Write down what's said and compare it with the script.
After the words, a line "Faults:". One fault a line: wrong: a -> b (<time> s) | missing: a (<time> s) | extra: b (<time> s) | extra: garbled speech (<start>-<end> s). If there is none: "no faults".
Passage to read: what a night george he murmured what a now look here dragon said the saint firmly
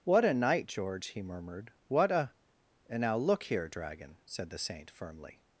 what a night george he murmured what a and now look here dragon said the saint firmly
Faults:
extra: and (2.9 s)